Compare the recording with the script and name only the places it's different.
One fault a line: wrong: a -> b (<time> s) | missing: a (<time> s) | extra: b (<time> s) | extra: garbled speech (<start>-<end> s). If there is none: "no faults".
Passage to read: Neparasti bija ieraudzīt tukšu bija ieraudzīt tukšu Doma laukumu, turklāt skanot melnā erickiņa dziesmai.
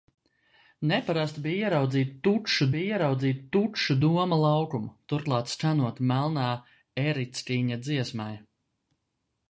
no faults